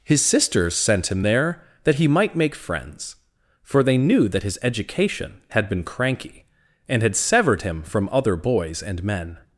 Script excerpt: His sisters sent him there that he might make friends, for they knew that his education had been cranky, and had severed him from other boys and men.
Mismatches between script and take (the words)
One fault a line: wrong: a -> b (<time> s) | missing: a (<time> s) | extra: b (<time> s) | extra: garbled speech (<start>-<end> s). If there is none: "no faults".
no faults